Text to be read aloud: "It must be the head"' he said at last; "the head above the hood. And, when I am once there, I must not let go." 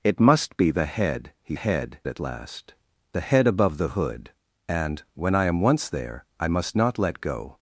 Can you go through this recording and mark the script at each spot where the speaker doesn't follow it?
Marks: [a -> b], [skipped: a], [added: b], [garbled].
"It must be the head"' he [said -> head] at last; "the head above the hood. And, when I am once there, I must not let go."